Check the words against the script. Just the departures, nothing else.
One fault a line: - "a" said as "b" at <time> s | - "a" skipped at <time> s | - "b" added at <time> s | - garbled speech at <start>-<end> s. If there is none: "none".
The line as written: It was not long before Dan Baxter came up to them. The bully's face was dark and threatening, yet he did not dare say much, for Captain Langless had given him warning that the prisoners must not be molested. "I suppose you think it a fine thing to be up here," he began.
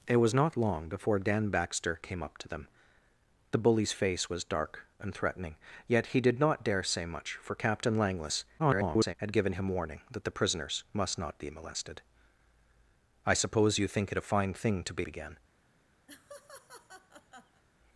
- garbled speech at 8.6-9.1 s
- "up here he" skipped at 15.1 s